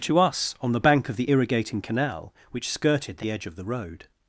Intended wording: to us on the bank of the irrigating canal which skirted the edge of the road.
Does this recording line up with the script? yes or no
yes